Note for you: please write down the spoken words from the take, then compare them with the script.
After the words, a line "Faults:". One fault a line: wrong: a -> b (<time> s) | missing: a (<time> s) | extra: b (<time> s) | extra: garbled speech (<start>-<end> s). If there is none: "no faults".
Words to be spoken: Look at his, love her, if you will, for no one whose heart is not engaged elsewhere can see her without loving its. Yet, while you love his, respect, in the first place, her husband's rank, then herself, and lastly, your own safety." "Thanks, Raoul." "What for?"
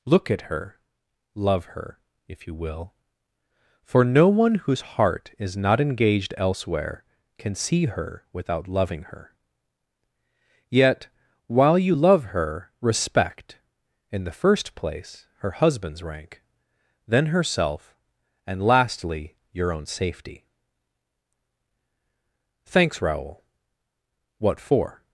Look at her, love her, if you will, for no one whose heart is not engaged elsewhere can see her without loving her. Yet, while you love her, respect, in the first place, her husband's rank, then herself, and lastly, your own safety." "Thanks, Raoul." "What for?"
Faults:
wrong: his -> her (0.4 s)
wrong: its -> her (9.0 s)
wrong: his -> her (12.2 s)